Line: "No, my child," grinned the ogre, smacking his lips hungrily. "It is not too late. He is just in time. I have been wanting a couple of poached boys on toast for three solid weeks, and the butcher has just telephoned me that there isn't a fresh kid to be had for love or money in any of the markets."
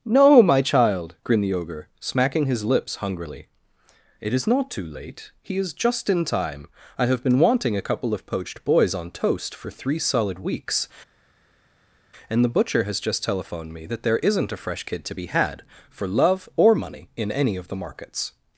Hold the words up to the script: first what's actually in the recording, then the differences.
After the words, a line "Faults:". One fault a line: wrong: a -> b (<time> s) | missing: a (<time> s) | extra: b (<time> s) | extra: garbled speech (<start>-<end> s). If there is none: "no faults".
"No, my child," grinned the ogre, smacking his lips hungrily. "It is not too late. He is just in time. I have been wanting a couple of poached boys on toast for three solid weeks, and the butcher has just telephoned me that there isn't a fresh kid to be had for love or money in any of the markets."
Faults:
no faults